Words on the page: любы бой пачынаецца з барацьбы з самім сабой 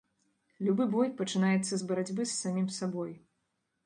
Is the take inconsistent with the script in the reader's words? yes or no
no